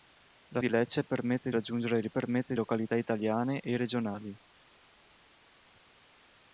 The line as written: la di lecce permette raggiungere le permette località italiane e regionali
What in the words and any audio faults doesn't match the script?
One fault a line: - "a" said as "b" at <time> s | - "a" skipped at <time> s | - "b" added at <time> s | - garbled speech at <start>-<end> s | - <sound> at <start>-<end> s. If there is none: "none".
none